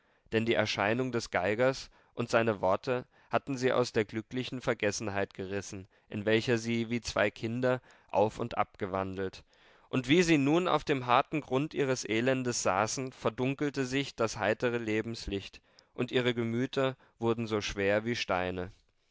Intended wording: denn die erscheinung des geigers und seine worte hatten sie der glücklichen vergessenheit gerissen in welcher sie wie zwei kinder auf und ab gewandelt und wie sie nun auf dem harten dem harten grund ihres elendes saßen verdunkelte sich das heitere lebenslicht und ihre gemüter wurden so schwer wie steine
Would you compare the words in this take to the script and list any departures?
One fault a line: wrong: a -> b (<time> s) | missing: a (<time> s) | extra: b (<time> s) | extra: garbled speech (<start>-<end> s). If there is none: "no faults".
extra: aus (3.7 s)
missing: dem harten (11.4 s)